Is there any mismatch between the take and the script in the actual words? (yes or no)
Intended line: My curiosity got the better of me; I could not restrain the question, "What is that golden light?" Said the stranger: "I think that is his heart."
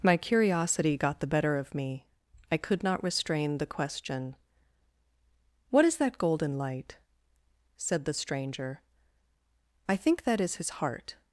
no